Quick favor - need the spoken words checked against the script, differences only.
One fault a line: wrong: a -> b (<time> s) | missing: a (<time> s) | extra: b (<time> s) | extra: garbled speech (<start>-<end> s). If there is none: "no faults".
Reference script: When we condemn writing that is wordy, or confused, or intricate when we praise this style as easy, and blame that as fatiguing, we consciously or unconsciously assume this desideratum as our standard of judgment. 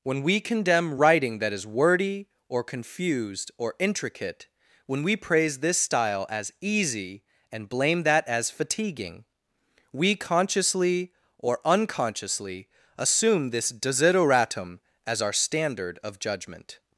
no faults